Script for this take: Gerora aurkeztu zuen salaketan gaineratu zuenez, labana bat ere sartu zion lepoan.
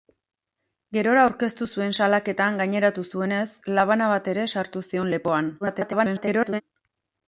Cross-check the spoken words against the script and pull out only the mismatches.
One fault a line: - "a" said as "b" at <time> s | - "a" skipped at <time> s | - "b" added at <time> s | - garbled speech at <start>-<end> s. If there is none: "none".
- garbled speech at 5.6-6.6 s